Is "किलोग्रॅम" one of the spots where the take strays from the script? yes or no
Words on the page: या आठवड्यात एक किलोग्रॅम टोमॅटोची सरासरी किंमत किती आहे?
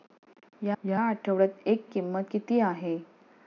yes